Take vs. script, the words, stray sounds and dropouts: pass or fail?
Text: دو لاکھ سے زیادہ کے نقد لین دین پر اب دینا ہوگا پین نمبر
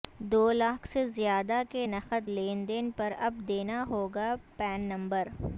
pass